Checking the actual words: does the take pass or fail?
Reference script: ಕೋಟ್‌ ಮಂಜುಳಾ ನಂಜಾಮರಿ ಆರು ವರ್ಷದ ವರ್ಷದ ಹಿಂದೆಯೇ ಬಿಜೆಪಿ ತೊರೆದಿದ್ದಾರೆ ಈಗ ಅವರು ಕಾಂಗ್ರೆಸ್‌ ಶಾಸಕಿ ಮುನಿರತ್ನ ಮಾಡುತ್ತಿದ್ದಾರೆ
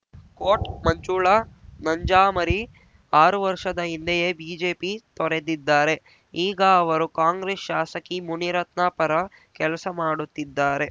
fail